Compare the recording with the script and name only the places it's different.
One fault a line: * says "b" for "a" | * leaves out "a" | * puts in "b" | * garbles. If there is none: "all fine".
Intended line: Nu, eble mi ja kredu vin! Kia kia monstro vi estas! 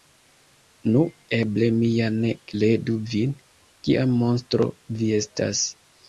* puts in "ne"
* leaves out "kia"